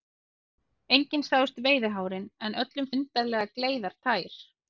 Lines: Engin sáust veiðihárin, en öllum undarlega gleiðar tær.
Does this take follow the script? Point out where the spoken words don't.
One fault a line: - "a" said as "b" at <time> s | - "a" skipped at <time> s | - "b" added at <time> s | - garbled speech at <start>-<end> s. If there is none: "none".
none